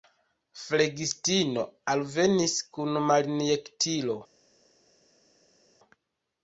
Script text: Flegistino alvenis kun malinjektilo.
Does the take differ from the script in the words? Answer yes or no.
no